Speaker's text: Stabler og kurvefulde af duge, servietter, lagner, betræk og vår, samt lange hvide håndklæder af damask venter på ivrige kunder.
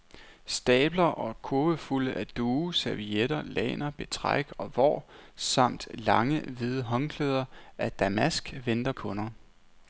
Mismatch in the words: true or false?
true